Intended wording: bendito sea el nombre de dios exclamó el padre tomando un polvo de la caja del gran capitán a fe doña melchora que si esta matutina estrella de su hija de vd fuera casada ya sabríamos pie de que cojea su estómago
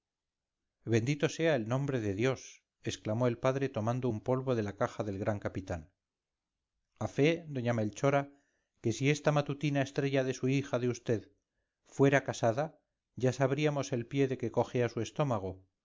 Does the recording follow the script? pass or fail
fail